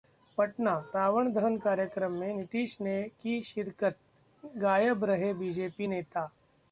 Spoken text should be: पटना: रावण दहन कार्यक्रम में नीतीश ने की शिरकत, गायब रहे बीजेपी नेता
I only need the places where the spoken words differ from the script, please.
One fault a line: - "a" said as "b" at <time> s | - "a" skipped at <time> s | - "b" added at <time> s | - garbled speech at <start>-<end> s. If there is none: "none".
none